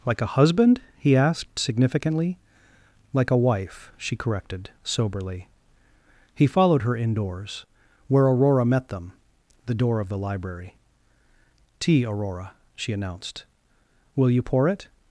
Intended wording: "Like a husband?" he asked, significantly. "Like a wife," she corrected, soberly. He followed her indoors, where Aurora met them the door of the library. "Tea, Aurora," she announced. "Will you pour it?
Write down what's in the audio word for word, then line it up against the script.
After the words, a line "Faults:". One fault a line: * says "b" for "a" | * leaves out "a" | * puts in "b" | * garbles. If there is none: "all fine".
"Like a husband?" he asked, significantly. "Like a wife," she corrected, soberly. He followed her indoors, where Aurora met them the door of the library. "Tea, Aurora," she announced. "Will you pour it?
Faults:
all fine